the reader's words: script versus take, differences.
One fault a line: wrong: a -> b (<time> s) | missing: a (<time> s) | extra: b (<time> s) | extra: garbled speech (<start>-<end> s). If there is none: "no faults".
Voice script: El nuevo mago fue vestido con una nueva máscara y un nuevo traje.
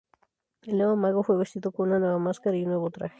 no faults